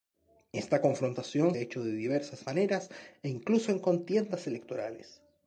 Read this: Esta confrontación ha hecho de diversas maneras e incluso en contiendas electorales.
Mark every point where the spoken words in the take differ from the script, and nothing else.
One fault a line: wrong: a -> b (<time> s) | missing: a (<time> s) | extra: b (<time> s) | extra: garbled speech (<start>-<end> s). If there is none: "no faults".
no faults